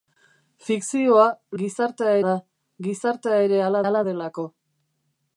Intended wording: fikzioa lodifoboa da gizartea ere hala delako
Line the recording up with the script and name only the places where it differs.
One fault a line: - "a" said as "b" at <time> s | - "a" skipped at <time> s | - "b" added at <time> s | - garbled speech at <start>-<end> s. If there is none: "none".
- "lodifoboa" said as "gizartea" at 1.6 s
- "hala" added at 3.9 s